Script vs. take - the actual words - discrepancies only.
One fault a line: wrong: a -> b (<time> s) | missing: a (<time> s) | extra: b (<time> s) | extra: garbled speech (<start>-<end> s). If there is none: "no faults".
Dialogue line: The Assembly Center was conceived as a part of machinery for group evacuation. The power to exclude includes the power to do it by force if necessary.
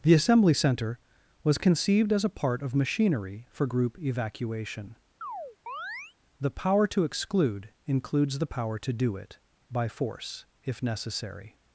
no faults